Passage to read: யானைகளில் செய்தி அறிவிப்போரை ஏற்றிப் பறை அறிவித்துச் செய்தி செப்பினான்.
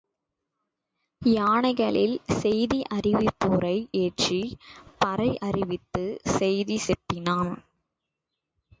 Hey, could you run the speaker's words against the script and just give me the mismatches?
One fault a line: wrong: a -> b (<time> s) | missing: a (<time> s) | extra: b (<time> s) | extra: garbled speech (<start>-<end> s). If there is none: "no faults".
no faults